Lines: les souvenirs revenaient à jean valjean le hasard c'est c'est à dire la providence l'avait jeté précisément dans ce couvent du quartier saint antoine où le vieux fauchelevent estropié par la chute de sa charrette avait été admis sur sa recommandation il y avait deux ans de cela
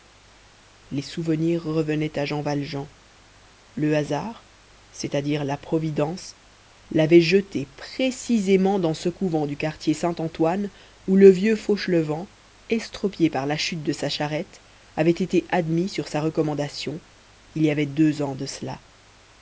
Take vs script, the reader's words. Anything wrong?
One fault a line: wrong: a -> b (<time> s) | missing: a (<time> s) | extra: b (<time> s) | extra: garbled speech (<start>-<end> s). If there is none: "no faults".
missing: c'est (5.1 s)